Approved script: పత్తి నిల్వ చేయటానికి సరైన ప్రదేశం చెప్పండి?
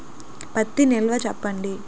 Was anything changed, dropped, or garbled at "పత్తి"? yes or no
no